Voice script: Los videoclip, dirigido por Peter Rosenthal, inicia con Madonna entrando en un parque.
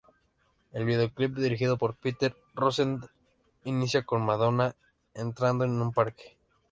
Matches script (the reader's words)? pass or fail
fail